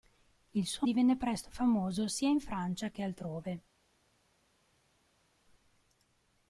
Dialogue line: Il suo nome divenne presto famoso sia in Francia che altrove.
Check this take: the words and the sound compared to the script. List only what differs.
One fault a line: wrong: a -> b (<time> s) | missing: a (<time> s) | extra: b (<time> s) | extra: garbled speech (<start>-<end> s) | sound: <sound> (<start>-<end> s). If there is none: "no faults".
missing: nome (0.9 s)